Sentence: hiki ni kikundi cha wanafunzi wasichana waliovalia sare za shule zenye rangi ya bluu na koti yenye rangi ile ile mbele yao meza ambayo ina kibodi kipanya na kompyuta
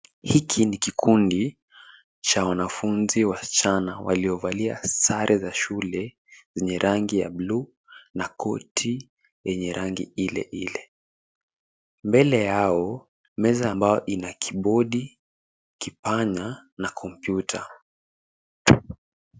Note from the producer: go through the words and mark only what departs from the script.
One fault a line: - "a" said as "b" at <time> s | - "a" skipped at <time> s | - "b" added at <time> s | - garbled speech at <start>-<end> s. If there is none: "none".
none